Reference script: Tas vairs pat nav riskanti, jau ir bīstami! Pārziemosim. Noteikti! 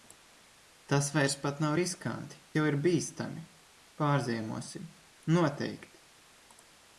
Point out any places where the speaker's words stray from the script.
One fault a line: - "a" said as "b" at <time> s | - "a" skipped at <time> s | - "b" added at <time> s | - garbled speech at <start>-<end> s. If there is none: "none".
none